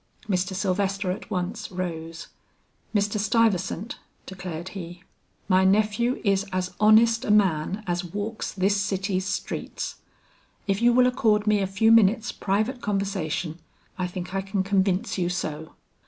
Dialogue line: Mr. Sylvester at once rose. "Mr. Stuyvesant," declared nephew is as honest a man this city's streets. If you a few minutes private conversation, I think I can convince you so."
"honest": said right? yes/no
yes